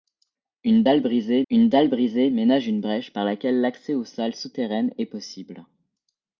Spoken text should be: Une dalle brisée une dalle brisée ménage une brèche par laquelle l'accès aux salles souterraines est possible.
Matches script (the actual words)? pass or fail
pass